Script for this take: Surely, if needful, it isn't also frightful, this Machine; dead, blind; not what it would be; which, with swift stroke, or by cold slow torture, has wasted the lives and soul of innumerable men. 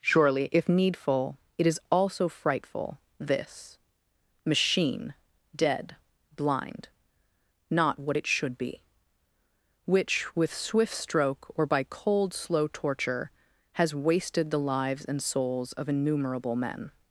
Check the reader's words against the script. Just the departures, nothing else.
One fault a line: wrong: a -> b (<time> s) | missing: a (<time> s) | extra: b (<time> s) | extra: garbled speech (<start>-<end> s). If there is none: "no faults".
wrong: isn't -> is (1.7 s)
wrong: would -> should (8.3 s)
wrong: soul -> souls (15.2 s)